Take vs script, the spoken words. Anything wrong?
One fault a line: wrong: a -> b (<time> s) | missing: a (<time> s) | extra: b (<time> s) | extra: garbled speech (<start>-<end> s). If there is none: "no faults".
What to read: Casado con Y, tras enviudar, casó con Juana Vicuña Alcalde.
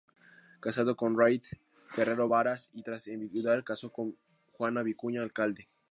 extra: Rita Guerrero Varas (1.1 s)